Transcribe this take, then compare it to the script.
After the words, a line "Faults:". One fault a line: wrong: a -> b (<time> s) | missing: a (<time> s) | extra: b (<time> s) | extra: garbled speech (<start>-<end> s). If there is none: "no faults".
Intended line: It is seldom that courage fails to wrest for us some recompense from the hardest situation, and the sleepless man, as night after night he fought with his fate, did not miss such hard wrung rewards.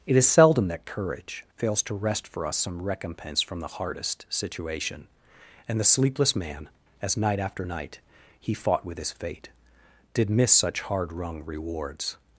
It is seldom that courage fails to wrest for us some recompense from the hardest situation, and the sleepless man, as night after night he fought with his fate, did miss such hard wrung rewards.
Faults:
missing: not (10.3 s)